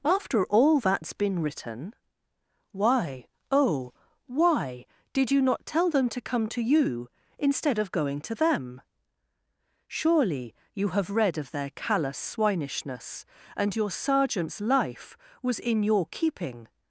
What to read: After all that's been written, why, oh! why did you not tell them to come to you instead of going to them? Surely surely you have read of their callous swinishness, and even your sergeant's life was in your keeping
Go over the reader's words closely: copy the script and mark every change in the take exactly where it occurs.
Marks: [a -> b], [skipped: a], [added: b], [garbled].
After all that's been written, why, oh! why did you not tell them to come to you instead of going to them? Surely [skipped: surely] you have read of their callous swinishness, and [skipped: even] your sergeant's life was in your keeping